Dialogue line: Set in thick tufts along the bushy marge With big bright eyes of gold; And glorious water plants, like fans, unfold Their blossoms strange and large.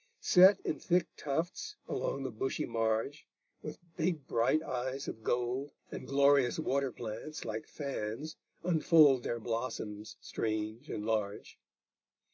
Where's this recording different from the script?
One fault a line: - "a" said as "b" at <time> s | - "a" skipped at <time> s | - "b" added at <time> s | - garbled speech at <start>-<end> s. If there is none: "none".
none